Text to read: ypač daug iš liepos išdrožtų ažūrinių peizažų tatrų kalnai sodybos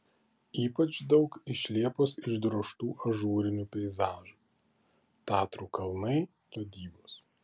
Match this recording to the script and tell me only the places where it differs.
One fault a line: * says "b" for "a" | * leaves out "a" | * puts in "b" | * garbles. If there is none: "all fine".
all fine